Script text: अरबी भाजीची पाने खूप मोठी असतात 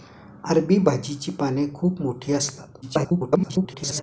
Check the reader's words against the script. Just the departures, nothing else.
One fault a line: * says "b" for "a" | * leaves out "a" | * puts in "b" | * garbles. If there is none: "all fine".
* garbles